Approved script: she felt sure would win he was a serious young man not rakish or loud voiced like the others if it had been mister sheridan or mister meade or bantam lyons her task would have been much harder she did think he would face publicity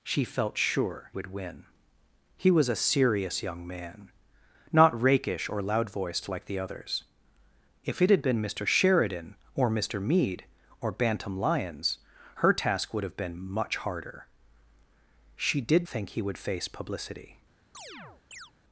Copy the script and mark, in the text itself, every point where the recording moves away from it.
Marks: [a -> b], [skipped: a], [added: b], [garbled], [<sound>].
she felt sure would win he was a serious young man not rakish or loud voiced like the others if it had been mister sheridan or mister meade or bantam lyons her task would have been much harder she did think he would face publicity [chirp]